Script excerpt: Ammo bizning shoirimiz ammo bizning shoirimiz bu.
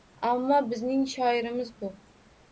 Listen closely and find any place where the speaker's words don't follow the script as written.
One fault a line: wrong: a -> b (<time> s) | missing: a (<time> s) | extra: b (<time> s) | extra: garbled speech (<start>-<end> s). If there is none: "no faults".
missing: ammo bizning shoirimiz (1.7 s)